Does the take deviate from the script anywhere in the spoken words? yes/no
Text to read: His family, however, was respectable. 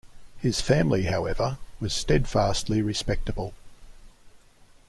yes